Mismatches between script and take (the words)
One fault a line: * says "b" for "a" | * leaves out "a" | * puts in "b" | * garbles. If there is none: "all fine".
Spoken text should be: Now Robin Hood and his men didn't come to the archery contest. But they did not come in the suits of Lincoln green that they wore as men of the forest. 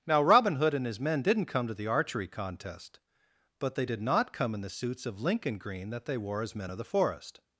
all fine